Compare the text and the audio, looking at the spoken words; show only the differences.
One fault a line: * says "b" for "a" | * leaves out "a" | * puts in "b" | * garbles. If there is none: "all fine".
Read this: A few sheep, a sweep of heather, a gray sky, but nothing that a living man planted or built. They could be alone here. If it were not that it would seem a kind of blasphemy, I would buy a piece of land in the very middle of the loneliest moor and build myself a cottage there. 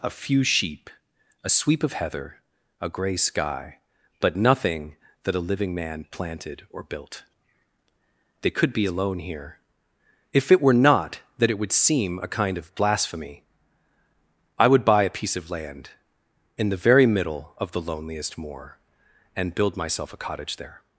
all fine